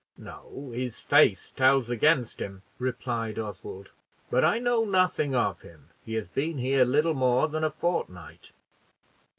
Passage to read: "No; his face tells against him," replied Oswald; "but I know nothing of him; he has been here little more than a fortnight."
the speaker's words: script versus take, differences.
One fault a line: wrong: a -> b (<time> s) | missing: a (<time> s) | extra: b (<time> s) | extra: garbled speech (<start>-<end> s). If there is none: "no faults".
no faults